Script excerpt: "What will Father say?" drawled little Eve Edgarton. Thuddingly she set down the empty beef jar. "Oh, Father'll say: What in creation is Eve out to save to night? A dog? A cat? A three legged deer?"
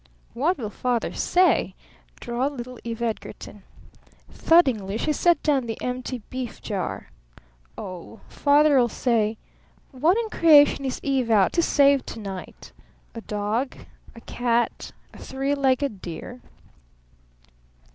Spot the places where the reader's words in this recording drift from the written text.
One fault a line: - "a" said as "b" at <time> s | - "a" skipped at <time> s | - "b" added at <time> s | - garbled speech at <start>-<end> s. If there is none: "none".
none